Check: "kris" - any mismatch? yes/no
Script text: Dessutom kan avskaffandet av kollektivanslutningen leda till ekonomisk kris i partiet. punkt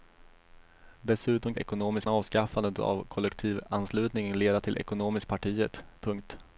yes